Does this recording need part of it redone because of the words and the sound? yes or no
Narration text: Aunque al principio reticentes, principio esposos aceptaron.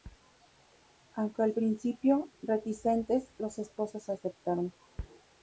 yes